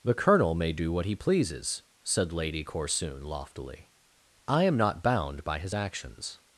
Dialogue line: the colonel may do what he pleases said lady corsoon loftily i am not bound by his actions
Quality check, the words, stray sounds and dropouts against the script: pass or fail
pass